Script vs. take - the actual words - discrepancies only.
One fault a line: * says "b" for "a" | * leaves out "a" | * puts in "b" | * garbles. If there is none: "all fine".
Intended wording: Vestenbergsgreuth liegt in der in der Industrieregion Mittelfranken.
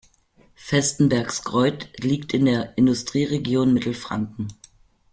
* leaves out "in der"